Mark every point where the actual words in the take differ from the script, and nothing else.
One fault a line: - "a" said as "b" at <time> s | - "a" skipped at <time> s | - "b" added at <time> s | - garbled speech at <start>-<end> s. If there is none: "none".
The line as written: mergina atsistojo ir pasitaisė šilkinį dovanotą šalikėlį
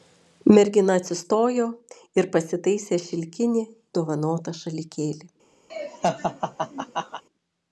none